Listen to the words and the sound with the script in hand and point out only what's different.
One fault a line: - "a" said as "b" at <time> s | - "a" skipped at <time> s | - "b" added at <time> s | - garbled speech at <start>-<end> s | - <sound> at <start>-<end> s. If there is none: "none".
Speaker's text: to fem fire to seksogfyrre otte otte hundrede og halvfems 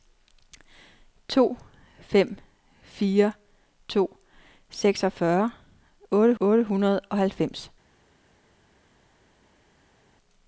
none